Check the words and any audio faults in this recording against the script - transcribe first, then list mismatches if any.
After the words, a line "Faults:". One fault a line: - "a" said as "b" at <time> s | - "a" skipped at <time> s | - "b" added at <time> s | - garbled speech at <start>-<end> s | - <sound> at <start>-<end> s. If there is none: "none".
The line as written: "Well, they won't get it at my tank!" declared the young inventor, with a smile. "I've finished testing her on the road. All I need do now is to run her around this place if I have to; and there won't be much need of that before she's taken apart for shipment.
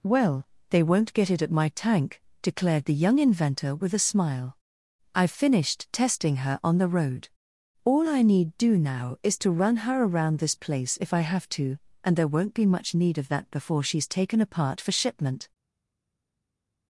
"Well, they won't get it at my tank!" declared the young inventor, with a smile. "I've finished testing her on the road. All I need do now is to run her around this place if I have to; and there won't be much need of that before she's taken apart for shipment.
Faults:
none